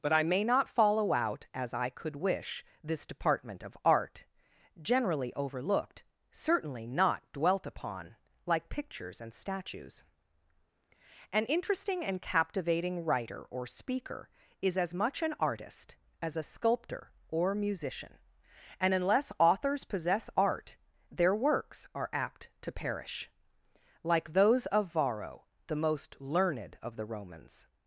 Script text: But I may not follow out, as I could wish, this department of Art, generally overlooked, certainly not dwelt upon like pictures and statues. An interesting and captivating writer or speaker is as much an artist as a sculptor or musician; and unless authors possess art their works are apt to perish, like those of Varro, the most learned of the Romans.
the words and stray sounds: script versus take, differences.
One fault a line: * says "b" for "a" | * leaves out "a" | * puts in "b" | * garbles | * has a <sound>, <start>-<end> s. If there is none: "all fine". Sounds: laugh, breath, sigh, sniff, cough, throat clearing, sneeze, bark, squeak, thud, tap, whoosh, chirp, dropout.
all fine